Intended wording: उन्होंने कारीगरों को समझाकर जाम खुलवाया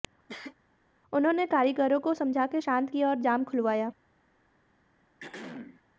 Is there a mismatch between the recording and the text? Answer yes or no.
yes